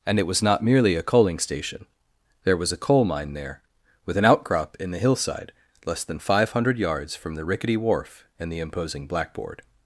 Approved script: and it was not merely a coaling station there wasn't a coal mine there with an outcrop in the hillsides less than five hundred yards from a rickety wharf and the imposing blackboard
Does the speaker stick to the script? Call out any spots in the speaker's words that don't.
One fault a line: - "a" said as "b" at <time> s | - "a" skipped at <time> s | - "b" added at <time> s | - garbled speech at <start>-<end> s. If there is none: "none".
- "wasn't" said as "was" at 2.6 s
- "hillsides" said as "hillside" at 5.0 s
- "a" said as "the" at 7.3 s